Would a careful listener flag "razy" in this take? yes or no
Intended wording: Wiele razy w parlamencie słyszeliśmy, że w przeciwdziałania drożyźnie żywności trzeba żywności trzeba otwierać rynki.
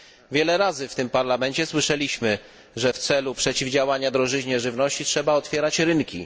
no